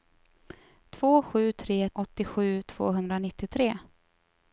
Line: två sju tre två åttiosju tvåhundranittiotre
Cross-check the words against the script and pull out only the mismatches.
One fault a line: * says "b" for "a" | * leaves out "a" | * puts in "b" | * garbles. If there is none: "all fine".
* leaves out "två"